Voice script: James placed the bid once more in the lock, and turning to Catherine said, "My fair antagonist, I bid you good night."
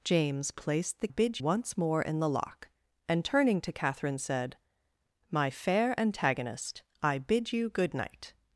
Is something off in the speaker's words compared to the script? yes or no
no